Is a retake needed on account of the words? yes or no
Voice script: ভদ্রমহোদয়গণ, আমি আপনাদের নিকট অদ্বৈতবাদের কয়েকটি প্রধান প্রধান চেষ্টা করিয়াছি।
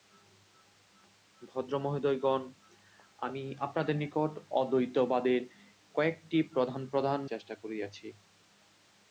no